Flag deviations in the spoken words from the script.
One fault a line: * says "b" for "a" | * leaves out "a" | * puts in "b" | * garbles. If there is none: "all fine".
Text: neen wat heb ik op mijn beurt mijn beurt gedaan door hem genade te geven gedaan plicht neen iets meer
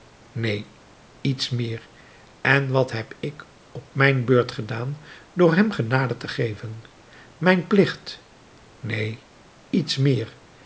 * puts in "iets meer en"
* leaves out "mijn beurt"
* says "mijn" for "gedaan"